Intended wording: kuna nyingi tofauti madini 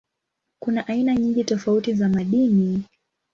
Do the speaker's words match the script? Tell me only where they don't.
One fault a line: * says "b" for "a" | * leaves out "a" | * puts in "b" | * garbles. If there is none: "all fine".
* puts in "aina"
* puts in "za"